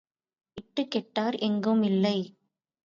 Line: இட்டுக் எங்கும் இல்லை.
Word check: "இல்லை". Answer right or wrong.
right